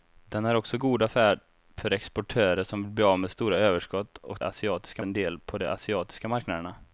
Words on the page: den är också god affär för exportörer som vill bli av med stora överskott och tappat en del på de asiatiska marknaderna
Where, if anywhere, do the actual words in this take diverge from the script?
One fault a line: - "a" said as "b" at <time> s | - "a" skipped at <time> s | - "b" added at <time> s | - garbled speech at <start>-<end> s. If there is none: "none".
- "tappat" said as "asiatiska" at 4.4 s